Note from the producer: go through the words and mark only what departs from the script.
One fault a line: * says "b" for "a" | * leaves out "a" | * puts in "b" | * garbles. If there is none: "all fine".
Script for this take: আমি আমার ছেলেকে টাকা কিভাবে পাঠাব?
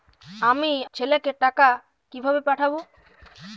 * leaves out "আমার"